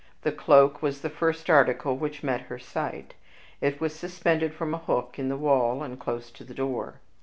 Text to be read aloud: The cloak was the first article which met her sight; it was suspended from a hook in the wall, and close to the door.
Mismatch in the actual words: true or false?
false